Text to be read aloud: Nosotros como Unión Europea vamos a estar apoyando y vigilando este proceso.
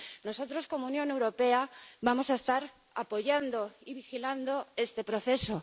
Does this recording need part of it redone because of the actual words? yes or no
no